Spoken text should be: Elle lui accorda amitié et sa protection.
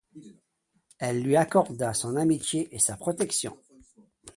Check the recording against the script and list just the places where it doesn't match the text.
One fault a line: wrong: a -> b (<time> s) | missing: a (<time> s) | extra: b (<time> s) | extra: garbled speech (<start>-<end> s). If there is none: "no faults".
extra: son (1.9 s)